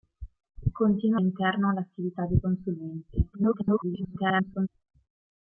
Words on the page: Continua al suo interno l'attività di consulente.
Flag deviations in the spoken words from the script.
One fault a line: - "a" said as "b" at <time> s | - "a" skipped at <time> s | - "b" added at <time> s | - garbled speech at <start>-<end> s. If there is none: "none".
- "al suo" skipped at 1.2 s
- garbled speech at 3.3-4.7 s